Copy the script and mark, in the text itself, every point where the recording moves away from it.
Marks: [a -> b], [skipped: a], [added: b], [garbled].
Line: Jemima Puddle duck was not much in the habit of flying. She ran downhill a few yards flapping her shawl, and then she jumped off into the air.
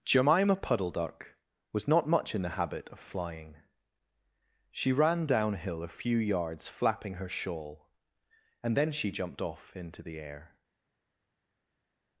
Jemima Puddle duck was not much in the habit of flying. She ran downhill a few yards flapping her shawl, and then she jumped off into the air.